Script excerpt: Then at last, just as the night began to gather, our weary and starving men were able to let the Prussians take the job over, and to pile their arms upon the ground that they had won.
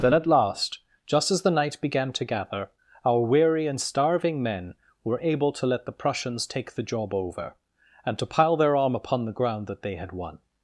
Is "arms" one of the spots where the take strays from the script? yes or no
yes